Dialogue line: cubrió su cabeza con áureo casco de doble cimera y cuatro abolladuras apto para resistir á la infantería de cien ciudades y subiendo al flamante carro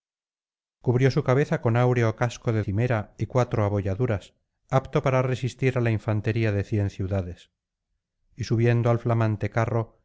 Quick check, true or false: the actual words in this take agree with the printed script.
false